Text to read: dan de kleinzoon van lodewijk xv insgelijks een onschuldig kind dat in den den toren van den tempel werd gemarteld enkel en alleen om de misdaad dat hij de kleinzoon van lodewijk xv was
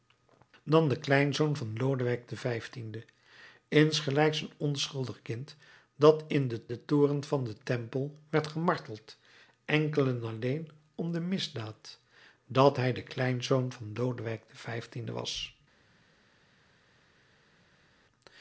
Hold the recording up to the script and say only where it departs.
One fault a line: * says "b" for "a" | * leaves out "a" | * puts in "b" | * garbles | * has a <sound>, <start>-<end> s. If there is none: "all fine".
all fine